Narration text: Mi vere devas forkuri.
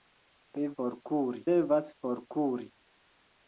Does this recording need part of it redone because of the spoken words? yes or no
yes